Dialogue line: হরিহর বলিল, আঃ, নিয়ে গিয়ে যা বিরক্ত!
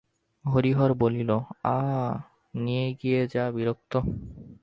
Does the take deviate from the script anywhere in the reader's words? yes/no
no